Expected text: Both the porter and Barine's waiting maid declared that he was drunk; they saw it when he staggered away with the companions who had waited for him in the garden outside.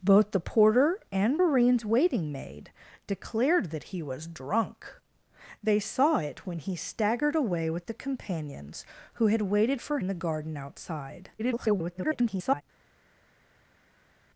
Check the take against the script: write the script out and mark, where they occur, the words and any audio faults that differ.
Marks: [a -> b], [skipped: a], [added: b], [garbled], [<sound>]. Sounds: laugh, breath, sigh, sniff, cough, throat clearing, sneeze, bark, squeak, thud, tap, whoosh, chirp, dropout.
Both the porter and Barine's waiting maid declared that he was drunk; they saw it when he staggered away with the companions who had waited for [skipped: him] in the garden outside. [garbled]